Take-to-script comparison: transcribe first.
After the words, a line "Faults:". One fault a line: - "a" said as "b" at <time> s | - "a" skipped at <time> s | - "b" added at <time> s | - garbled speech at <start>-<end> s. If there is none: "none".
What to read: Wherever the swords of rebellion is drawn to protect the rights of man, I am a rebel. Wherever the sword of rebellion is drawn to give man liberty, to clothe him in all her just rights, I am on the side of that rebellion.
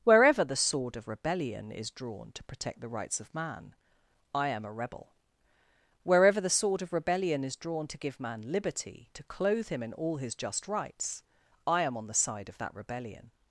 Wherever the sword of rebellion is drawn to protect the rights of man, I am a rebel. Wherever the sword of rebellion is drawn to give man liberty, to clothe him in all his just rights, I am on the side of that rebellion.
Faults:
- "swords" said as "sword" at 0.6 s
- "her" said as "his" at 10.2 s